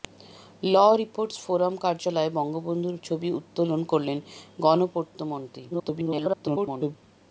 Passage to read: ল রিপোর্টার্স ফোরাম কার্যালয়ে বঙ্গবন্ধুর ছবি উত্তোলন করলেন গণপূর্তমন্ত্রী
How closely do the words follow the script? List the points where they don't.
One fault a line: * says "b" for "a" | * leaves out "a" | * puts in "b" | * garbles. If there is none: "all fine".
* garbles